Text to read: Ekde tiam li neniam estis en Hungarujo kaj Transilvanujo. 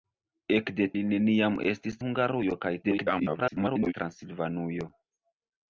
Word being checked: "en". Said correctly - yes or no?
no